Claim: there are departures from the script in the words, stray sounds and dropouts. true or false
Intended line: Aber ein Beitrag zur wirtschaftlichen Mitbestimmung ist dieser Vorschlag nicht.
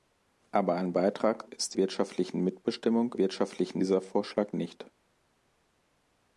true